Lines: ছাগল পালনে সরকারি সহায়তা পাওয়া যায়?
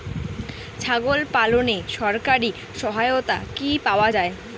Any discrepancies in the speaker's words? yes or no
yes